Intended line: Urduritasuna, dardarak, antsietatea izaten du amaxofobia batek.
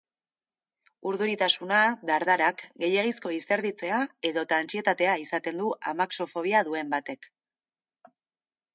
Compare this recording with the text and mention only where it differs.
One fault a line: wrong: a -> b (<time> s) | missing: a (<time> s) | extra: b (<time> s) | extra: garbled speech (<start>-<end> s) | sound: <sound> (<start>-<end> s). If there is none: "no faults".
extra: gehiegizko izerditzea edota (2.9 s)
extra: duen (6.7 s)